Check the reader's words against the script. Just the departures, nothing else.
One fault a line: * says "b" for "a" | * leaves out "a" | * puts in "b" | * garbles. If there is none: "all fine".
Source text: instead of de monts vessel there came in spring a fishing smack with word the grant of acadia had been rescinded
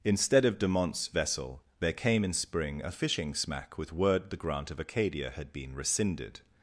all fine